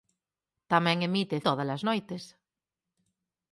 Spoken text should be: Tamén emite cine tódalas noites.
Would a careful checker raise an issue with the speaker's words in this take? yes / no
yes